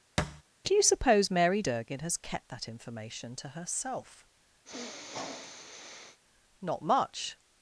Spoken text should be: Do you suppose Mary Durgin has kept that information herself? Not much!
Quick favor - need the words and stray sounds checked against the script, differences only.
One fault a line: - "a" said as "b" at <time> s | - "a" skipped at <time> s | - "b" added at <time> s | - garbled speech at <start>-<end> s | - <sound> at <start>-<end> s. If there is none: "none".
- thud at 0.2-0.4 s
- "to" added at 3.4 s
- sniff at 4.6-6.2 s